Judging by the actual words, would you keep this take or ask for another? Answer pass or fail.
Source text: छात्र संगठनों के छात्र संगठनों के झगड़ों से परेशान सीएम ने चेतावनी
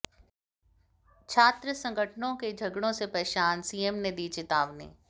fail